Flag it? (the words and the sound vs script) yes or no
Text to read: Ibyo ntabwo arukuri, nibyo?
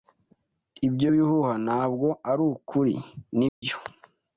yes